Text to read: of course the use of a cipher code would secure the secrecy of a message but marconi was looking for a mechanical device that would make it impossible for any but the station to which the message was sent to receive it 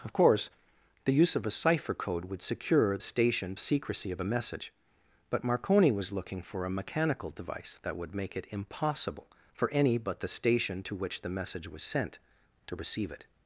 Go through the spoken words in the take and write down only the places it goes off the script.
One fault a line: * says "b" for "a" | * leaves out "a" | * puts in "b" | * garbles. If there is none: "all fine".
* says "station" for "the"